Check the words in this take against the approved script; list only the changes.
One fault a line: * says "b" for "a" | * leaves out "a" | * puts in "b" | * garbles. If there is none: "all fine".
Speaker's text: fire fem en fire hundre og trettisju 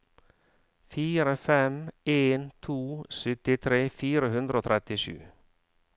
* puts in "to syttitre"